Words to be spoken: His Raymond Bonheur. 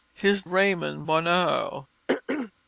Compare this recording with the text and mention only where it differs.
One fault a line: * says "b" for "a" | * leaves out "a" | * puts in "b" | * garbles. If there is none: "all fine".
all fine